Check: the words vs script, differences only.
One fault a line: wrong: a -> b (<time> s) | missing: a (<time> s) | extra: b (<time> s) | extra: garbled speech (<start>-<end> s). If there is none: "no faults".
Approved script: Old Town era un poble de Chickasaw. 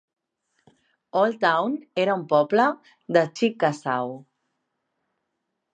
no faults